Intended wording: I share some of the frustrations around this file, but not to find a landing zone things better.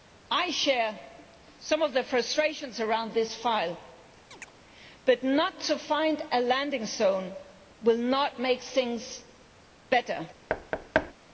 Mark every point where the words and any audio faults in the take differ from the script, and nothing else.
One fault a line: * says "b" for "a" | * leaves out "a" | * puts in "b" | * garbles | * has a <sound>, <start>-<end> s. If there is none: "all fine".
* has a chirp, 4.3-4.5 s
* puts in "will not make"
* has a thud, 10.5-11.1 s